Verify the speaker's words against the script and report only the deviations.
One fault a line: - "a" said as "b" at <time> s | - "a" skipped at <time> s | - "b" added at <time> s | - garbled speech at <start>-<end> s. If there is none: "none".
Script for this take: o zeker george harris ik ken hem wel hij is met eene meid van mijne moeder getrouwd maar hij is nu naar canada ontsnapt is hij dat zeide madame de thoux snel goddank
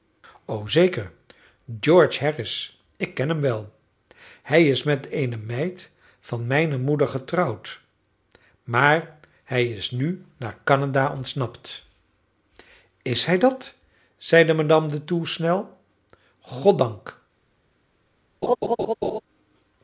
none